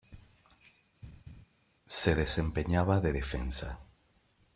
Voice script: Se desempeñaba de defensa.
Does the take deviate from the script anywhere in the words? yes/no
no